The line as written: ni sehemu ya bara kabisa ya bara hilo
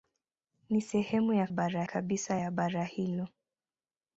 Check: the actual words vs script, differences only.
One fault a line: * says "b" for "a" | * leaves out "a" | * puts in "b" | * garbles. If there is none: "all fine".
all fine